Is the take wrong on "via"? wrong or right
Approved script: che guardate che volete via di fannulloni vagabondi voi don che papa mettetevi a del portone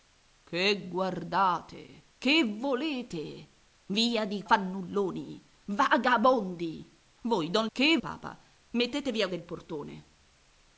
right